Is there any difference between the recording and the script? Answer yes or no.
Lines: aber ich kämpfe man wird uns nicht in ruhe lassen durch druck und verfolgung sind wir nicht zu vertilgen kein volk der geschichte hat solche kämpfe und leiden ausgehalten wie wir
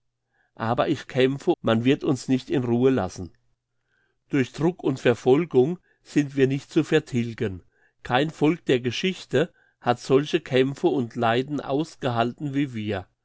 no